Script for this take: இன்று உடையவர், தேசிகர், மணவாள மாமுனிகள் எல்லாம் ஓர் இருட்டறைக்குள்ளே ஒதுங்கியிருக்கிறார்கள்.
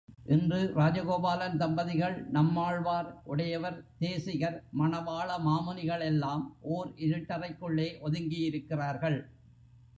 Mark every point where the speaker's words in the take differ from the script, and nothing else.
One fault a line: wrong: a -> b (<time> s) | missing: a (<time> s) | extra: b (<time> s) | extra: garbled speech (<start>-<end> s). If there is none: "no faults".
extra: ராஜகோபாலன் தம்பதிகள் நம்மாழ்வார் (0.8 s)